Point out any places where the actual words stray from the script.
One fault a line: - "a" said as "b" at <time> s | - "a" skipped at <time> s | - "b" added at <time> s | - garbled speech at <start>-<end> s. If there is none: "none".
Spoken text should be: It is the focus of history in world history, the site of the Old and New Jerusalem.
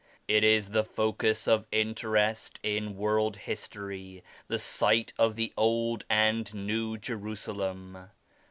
- "history" said as "interest" at 1.7 s